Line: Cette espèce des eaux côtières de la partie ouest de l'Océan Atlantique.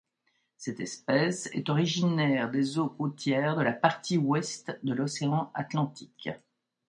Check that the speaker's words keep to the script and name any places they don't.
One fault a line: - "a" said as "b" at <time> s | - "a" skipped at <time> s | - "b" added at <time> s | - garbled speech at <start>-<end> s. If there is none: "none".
- "est originaire" added at 1.5 s